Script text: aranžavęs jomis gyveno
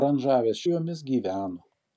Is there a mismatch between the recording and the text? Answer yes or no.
no